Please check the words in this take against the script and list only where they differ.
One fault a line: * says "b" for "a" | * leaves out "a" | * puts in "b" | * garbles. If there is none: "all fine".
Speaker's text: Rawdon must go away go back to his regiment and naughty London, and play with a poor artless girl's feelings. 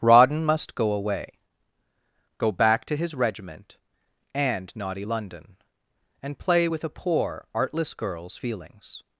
all fine